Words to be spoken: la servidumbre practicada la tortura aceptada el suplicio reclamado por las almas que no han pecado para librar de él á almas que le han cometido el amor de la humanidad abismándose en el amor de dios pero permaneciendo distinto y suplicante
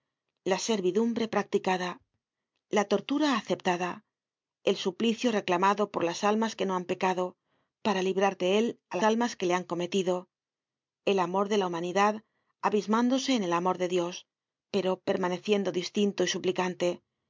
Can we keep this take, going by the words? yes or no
yes